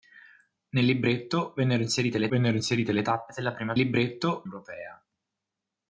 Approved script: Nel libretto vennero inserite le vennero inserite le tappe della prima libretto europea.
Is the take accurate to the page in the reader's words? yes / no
yes